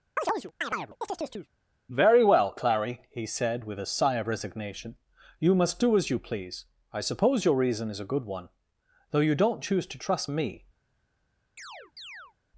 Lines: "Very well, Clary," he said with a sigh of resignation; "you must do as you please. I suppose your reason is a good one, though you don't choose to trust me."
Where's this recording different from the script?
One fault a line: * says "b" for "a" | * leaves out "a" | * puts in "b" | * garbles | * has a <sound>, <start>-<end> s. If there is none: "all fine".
* has a chirp, 0.2-1.5 s
* has a chirp, 11.6-12.3 s